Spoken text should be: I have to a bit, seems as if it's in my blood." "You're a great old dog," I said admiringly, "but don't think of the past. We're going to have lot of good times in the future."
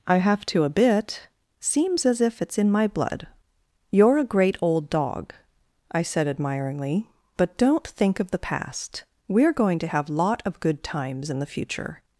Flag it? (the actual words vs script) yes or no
no